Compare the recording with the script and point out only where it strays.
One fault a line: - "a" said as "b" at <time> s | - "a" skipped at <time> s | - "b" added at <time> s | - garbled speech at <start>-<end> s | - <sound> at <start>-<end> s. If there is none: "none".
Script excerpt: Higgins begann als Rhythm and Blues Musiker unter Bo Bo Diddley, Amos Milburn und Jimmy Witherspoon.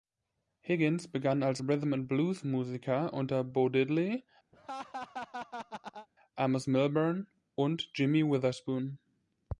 - "Bo" skipped at 3.7 s
- laugh at 4.5-6.1 s